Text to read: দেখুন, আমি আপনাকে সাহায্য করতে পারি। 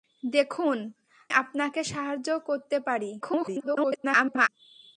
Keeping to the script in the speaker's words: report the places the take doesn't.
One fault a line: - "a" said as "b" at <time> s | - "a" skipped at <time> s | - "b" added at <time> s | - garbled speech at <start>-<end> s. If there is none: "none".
- "আমি" skipped at 0.8 s
- garbled speech at 3.2-4.5 s